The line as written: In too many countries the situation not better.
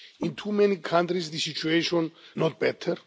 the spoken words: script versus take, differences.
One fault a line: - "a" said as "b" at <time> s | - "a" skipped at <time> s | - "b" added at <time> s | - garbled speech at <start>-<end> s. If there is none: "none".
none